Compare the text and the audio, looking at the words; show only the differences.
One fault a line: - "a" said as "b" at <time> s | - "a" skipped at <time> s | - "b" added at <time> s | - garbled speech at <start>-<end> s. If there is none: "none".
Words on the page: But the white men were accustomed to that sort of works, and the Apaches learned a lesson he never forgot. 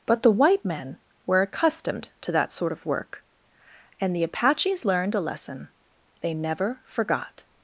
- "works" said as "work" at 2.9 s
- "he" said as "they" at 6.2 s